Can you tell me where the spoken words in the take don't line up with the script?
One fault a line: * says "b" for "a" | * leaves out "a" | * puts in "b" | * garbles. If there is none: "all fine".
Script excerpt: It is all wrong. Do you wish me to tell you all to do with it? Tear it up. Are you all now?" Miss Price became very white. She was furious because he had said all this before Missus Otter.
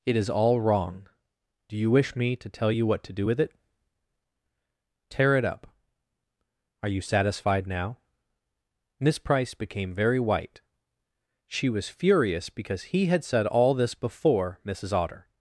* says "what" for "all"
* says "satisfied" for "all"